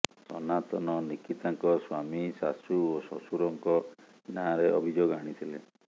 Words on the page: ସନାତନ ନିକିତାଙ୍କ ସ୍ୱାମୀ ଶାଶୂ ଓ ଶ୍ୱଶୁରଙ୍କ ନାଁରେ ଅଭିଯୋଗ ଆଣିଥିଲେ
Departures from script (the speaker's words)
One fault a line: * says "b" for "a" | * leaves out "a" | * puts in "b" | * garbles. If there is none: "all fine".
all fine